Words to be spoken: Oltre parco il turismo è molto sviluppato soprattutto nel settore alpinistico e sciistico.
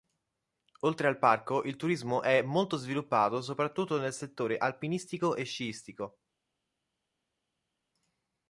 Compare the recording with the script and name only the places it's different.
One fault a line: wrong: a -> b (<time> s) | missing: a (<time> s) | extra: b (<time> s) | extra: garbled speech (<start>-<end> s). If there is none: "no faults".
extra: al (1.1 s)